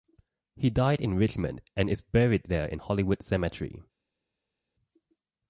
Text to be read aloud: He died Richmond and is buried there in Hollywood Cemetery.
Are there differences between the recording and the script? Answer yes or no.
yes